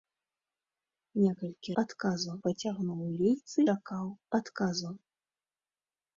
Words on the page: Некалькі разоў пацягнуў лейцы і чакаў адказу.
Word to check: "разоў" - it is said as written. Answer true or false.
false